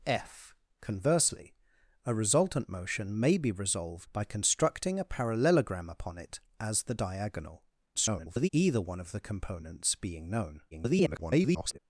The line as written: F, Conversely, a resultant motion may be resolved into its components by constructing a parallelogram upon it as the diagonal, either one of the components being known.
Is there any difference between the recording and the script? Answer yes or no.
yes